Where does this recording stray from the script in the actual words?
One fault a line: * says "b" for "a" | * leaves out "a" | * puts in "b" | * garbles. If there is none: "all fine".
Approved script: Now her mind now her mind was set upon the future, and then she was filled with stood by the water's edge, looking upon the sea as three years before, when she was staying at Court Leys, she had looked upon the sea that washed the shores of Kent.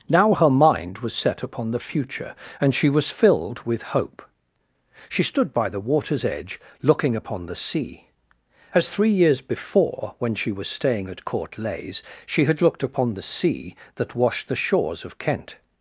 * leaves out "now her mind"
* leaves out "then"
* puts in "hope She"